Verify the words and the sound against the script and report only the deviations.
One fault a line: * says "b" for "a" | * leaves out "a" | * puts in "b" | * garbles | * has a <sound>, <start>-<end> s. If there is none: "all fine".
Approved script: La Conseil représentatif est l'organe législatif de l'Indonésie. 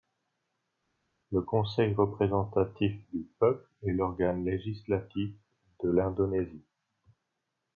* says "Le" for "La"
* puts in "du peuple"